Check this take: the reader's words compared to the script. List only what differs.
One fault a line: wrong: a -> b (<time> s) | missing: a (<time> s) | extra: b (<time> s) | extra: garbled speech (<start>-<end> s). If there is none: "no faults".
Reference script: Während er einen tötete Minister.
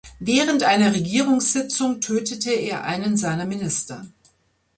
extra: einer Regierungssitzung tötete (0.6 s)
wrong: tötete -> seiner (3.2 s)